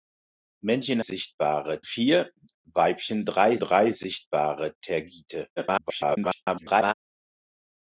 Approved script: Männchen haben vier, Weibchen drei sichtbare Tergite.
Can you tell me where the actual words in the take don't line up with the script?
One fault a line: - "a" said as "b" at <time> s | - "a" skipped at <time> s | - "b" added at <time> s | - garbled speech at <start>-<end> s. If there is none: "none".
- "haben" said as "sichtbare" at 1.0 s
- "drei" added at 3.6 s
- garbled speech at 5.6-6.9 s